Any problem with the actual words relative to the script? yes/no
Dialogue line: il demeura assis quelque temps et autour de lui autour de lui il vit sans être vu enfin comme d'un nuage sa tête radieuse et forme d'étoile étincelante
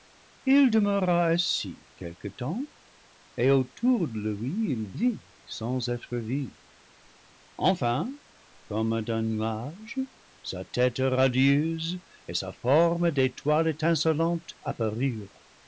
yes